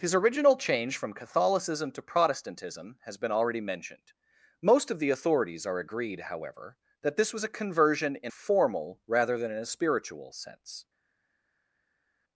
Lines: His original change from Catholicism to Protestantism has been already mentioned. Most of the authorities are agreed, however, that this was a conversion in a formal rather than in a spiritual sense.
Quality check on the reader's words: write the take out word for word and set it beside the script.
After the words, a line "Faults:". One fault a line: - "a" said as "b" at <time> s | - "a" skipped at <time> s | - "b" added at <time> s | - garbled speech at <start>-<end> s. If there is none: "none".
His original change from Catholicism to Protestantism has been already mentioned. Most of the authorities are agreed, however, that this was a conversion in formal rather than in a spiritual sense.
Faults:
- "a" skipped at 8.3 s